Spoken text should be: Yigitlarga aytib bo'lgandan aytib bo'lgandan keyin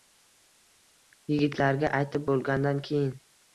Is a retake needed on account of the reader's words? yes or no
yes